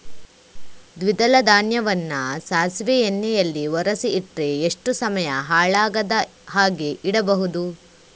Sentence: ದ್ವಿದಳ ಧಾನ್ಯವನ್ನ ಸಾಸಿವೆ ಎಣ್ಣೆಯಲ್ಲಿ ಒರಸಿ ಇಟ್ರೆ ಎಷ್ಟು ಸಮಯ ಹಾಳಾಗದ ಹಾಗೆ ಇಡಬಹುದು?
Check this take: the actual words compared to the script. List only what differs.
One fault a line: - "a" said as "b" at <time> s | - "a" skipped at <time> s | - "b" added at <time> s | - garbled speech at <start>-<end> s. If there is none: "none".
none